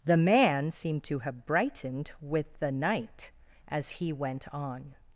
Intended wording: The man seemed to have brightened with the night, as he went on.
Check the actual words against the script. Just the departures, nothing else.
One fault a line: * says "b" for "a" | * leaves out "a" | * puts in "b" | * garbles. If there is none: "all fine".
all fine